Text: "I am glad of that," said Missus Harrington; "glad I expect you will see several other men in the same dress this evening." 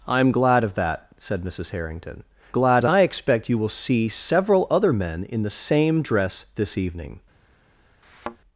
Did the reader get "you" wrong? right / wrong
right